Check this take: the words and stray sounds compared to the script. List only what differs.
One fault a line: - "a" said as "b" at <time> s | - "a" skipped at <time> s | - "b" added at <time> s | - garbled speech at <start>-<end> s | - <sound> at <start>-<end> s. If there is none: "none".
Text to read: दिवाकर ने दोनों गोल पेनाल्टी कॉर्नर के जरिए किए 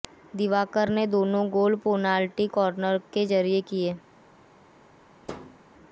- thud at 5.3-5.6 s